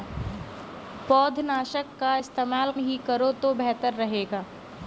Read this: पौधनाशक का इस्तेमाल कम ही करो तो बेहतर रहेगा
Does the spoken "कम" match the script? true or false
false